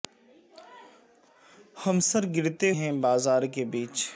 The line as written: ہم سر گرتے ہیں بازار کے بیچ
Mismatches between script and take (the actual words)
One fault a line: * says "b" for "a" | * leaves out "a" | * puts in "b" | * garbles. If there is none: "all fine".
all fine